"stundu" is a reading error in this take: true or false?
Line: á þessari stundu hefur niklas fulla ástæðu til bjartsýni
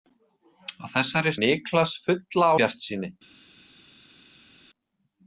true